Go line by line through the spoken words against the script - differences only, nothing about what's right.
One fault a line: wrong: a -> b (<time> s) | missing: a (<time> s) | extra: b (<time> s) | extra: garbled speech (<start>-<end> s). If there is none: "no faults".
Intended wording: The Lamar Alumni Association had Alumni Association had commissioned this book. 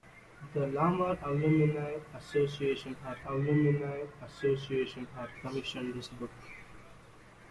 no faults